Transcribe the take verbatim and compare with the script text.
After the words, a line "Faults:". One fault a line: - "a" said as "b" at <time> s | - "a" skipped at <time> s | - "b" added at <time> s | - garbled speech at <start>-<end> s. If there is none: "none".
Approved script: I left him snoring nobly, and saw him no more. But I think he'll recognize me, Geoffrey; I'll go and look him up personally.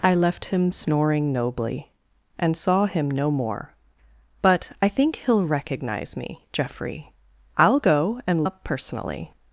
I left him snoring nobly, and saw him no more. But I think he'll recognize me, Geoffrey; I'll go and up personally.
Faults:
- "look him" skipped at 8.5 s